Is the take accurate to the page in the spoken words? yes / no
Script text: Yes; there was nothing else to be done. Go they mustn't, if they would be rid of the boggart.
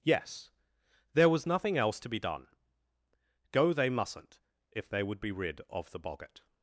yes